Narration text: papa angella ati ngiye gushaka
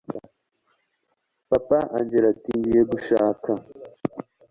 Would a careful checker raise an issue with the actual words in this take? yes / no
no